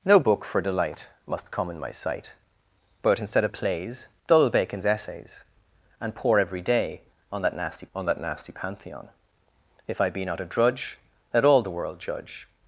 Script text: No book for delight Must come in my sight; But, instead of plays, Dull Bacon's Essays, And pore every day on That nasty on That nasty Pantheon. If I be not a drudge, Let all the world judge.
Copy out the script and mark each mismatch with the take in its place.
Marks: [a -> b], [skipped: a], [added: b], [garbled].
No book for delight Must come in my sight; But, instead of plays, Dull Bacon's Essays, And pore every day on That nasty on That nasty Pantheon. If I be not a drudge, Let all the world judge.